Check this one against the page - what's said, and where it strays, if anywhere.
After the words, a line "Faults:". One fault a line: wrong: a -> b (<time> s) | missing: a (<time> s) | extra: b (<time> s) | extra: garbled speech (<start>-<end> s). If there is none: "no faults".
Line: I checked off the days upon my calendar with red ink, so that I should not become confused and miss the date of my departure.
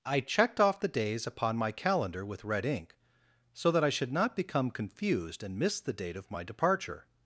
I checked off the days upon my calendar with red ink, so that I should not become confused and miss the date of my departure.
Faults:
no faults